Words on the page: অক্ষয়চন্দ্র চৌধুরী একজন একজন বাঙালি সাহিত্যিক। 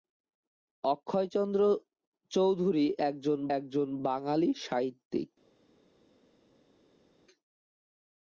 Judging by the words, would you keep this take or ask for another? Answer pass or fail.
pass